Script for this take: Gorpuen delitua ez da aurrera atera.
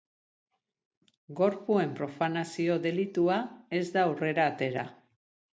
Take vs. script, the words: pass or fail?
fail